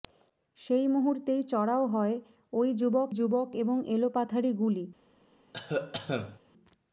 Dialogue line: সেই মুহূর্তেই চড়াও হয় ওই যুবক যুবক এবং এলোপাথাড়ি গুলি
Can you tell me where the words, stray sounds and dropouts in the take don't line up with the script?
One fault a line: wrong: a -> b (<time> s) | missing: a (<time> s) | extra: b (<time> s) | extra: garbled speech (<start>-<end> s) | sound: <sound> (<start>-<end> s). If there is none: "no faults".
sound: cough (5.5-6.4 s)